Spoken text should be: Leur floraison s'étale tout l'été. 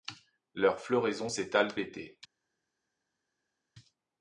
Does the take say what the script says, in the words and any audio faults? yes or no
no